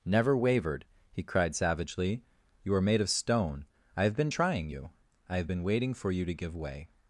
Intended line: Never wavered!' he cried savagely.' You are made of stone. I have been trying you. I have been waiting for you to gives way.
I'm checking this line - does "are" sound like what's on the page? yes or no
yes